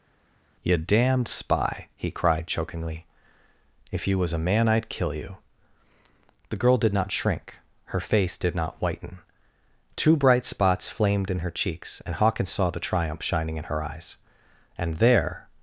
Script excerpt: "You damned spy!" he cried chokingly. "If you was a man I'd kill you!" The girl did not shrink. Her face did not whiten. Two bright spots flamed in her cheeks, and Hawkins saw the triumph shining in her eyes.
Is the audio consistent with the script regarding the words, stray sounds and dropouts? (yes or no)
no